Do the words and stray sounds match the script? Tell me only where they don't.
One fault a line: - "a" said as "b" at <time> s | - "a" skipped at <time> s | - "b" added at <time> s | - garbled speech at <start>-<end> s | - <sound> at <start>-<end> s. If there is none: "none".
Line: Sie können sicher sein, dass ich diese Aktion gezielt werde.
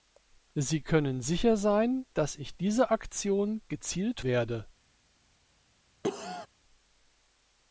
- cough at 6.0-6.5 s